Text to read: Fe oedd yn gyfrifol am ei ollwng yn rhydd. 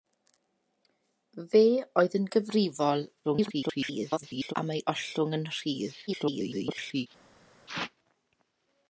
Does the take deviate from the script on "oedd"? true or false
false